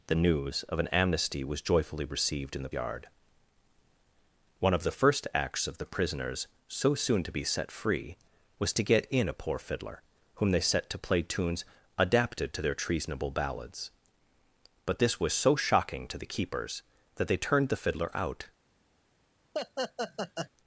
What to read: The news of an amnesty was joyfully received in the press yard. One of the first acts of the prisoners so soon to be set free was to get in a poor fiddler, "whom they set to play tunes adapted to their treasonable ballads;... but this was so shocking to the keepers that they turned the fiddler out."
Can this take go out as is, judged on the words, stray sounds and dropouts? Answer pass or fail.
fail